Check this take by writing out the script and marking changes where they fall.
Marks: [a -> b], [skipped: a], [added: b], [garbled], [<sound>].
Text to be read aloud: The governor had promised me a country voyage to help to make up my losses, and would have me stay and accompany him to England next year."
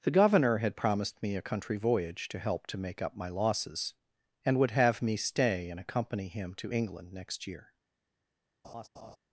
The governor had promised me a country voyage to help to make up my losses, and would have me stay and accompany him to England next year." [laugh]